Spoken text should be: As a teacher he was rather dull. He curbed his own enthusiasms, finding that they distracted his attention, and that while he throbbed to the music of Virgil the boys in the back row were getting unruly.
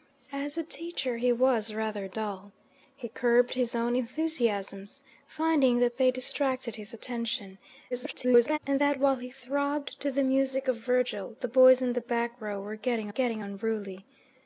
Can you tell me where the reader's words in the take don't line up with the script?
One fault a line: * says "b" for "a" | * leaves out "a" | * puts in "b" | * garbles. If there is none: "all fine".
* garbles
* puts in "getting"